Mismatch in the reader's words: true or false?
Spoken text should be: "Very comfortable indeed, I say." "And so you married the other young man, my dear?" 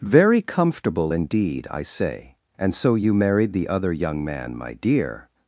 false